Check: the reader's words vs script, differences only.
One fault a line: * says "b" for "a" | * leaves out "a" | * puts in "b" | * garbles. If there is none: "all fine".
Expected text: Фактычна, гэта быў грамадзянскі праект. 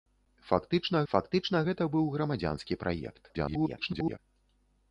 * puts in "фактычна"
* garbles